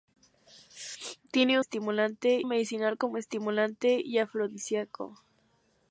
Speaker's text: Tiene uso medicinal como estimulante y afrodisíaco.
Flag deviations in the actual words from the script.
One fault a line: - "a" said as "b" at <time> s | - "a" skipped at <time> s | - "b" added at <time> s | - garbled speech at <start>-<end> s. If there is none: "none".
- "uso" said as "estimulante" at 1.6 s